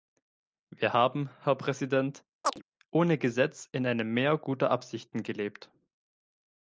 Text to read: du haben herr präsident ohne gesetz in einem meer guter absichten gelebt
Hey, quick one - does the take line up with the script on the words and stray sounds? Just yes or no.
no